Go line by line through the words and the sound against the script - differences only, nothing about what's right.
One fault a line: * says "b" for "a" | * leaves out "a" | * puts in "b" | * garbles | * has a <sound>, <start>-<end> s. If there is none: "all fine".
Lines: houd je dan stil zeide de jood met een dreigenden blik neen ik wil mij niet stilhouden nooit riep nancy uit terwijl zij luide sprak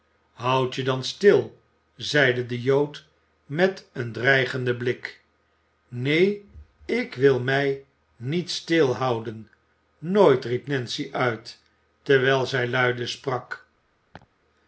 * has a laugh, 14.1-14.3 s